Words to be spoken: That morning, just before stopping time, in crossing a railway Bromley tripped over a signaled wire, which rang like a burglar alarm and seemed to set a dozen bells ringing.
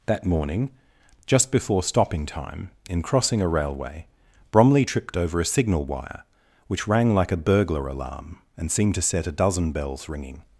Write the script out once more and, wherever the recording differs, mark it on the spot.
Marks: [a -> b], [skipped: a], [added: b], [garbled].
That morning, just before stopping time, in crossing a railway Bromley tripped over a [signaled -> signal] wire, which rang like a burglar alarm and seemed to set a dozen bells ringing.